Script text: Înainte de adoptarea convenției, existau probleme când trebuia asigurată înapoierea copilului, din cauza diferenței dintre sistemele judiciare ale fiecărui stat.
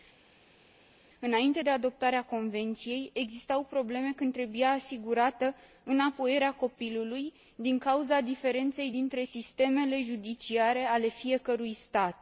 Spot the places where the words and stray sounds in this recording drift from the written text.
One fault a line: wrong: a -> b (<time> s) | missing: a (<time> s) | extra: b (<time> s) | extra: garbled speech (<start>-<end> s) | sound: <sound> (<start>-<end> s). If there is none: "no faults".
no faults